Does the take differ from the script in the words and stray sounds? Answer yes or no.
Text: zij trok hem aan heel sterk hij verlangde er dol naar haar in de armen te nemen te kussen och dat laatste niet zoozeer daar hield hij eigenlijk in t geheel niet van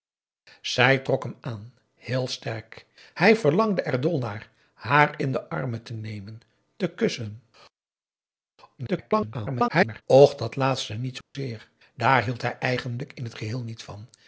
yes